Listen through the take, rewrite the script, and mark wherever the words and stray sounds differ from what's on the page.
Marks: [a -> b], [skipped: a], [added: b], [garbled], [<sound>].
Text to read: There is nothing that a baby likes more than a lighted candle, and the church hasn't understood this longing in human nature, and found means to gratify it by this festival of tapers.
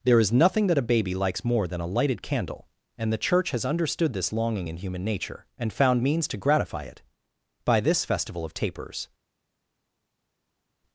There is nothing that a baby likes more than a lighted candle, and the church [hasn't -> has] understood this longing in human nature, and found means to gratify it by this festival of tapers.